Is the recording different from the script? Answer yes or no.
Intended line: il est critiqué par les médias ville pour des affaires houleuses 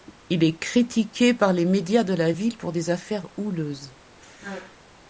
yes